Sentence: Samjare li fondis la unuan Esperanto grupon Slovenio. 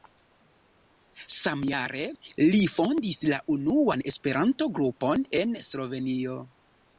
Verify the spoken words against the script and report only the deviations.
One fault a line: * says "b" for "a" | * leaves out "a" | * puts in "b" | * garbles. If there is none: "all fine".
* puts in "en"